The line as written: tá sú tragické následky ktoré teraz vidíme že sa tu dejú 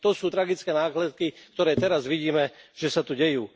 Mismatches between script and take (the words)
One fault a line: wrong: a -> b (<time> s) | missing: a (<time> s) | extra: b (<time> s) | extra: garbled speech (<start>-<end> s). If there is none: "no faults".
wrong: tá -> to (0.0 s)